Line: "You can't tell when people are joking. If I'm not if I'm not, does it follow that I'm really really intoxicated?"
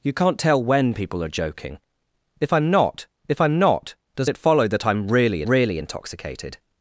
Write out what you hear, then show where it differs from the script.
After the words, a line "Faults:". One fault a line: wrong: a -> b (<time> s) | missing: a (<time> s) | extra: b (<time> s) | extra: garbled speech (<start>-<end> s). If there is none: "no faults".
"You can't tell when people are joking. If I'm not if I'm not, does it follow that I'm really really intoxicated?"
Faults:
no faults